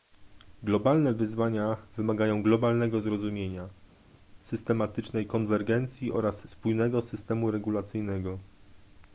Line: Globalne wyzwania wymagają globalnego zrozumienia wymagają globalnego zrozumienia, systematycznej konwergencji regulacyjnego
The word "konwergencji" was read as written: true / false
false